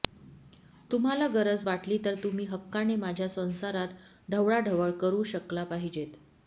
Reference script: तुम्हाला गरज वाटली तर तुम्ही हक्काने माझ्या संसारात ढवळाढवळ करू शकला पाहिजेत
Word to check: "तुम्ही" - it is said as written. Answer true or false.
true